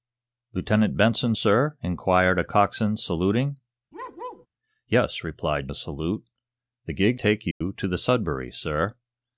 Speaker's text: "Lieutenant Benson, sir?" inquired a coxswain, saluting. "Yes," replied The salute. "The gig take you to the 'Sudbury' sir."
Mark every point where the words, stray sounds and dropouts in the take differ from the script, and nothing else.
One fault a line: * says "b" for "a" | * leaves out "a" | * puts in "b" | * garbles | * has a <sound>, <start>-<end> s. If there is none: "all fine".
* has a bark, 3.9-4.5 s
* has a dropout, 7.5-7.6 s